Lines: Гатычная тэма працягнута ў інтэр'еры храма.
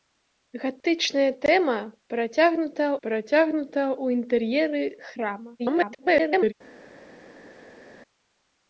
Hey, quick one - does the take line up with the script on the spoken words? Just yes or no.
no